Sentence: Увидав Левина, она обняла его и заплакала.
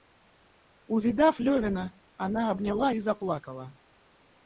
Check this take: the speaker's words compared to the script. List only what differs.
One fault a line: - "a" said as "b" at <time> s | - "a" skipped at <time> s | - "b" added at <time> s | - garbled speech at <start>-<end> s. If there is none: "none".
- "его" skipped at 2.9 s